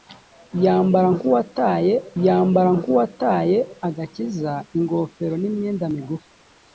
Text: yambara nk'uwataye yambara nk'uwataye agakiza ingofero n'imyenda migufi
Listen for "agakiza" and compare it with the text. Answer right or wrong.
right